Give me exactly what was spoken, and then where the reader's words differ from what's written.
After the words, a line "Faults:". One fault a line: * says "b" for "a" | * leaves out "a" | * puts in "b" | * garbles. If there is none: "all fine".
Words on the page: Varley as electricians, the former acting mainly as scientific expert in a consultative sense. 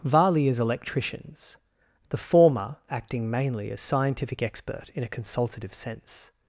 Varley as electricians, the former acting mainly as scientific expert in a consultative sense.
Faults:
all fine